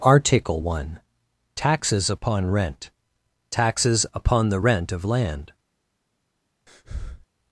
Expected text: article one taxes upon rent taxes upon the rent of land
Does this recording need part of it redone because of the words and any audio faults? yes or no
yes